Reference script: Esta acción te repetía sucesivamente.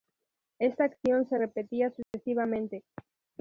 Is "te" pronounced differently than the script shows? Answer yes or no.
yes